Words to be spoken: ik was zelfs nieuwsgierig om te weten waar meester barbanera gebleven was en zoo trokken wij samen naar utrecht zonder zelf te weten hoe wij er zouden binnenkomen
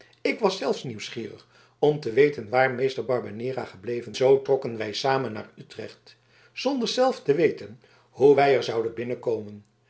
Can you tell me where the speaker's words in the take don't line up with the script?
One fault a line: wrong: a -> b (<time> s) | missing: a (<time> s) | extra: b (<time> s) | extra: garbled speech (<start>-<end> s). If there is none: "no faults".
missing: was en (4.2 s)